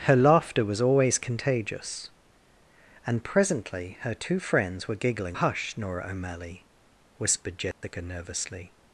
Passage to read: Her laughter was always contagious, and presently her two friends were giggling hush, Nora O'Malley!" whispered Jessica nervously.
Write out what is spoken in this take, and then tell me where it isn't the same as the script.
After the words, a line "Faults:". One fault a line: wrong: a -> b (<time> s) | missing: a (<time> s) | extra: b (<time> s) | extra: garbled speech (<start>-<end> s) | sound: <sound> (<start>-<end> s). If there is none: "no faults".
Her laughter was always contagious, and presently her two friends were giggling hush, Nora O'Malley!" whispered Jessica nervously.
Faults:
sound: dropout (7.7-7.8 s)